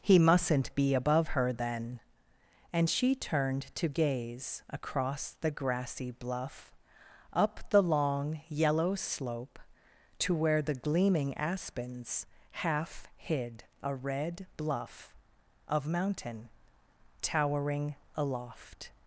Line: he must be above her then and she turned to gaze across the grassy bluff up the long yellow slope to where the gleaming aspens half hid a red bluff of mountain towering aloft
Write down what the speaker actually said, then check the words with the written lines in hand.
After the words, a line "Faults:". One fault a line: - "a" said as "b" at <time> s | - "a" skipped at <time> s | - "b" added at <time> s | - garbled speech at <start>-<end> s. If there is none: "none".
he mustn't be above her then and she turned to gaze across the grassy bluff up the long yellow slope to where the gleaming aspens half hid a red bluff of mountain towering aloft
Faults:
- "must" said as "mustn't" at 0.2 s